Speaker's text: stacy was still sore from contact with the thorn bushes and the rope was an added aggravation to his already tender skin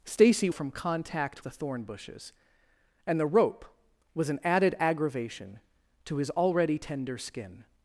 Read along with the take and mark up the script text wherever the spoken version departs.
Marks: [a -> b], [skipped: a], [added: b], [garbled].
stacy [skipped: was still sore] from contact [skipped: with] the thorn bushes and the rope was an added aggravation to his already tender skin